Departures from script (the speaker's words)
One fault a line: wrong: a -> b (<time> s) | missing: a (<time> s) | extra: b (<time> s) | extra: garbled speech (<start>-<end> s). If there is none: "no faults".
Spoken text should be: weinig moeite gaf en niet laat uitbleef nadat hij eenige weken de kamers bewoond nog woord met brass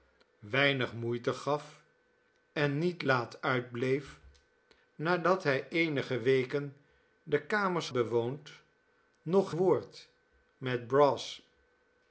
no faults